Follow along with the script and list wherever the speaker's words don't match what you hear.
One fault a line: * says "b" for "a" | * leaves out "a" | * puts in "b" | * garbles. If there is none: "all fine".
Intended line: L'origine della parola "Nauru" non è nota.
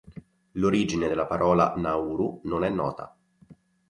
all fine